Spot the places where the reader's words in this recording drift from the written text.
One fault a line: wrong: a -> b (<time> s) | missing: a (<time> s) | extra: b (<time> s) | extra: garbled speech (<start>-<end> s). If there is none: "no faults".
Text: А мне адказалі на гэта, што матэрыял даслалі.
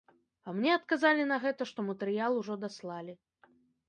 extra: ужо (2.4 s)